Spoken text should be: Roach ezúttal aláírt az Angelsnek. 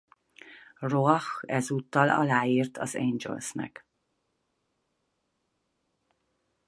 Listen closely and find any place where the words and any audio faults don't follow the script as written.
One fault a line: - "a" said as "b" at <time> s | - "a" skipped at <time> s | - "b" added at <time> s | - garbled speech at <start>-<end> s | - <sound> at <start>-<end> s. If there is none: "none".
none